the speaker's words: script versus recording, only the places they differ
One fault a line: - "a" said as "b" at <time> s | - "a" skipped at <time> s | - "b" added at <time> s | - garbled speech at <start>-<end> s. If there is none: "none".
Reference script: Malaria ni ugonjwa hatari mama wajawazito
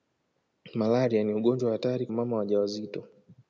none